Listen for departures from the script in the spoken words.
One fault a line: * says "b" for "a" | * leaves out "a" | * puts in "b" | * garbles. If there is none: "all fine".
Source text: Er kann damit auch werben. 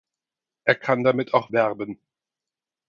all fine